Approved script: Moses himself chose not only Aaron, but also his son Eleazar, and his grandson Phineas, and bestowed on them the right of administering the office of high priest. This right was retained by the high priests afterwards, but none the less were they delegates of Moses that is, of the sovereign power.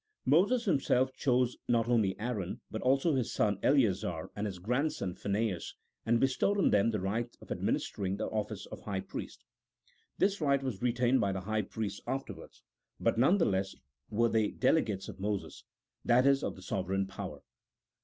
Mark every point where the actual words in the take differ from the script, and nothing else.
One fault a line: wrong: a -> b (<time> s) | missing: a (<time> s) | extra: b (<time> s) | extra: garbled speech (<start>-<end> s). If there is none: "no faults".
no faults